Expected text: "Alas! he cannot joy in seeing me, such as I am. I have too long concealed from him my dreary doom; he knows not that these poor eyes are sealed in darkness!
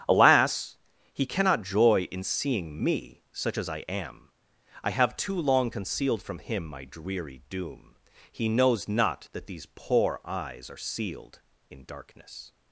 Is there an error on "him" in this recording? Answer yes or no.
no